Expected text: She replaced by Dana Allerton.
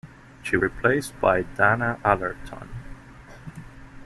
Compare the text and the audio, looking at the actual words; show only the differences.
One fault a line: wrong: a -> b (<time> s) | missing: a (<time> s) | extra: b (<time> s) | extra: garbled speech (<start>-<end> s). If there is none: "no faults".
no faults